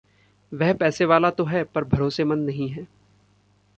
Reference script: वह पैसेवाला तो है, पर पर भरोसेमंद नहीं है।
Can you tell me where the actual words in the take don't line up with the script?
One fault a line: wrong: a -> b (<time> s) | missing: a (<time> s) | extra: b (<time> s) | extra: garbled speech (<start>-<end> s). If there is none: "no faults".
missing: पर (1.8 s)